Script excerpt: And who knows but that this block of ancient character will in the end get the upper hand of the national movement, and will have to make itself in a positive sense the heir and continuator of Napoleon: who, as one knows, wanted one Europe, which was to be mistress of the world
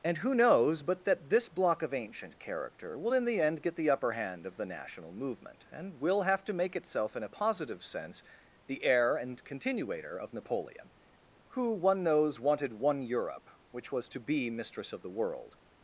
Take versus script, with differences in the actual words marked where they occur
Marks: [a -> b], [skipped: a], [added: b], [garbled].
And who knows but that this block of ancient character will in the end get the upper hand of the national movement, and will have to make itself in a positive sense the heir and continuator of Napoleon: who, [skipped: as] one knows, wanted one Europe, which was to be mistress of the world